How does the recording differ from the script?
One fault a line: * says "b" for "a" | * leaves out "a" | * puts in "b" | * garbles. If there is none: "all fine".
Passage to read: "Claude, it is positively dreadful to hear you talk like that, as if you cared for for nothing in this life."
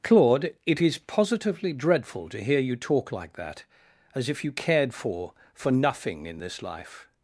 all fine